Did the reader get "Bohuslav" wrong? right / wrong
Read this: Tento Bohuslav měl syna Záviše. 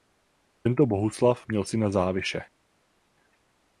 right